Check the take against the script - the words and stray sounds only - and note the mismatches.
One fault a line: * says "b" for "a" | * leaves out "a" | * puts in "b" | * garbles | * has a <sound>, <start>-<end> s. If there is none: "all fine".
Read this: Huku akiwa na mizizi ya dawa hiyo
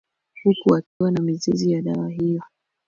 * has a dropout, 0.9-1.0 s